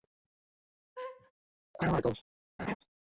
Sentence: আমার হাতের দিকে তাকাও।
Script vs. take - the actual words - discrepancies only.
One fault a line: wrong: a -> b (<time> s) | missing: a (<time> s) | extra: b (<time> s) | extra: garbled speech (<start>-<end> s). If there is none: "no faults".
missing: হাতের দিকে (2.0 s)